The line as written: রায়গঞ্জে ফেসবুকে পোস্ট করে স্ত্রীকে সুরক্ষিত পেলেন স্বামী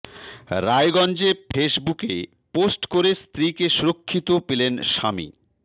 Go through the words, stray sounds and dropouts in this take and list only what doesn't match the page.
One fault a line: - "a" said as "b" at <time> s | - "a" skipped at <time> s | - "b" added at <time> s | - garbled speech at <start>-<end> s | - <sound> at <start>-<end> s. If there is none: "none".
none